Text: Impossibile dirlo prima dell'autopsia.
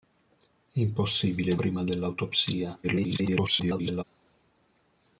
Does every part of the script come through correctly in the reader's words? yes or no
no